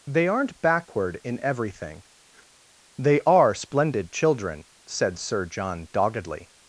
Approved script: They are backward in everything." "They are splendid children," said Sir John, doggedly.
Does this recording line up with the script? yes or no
no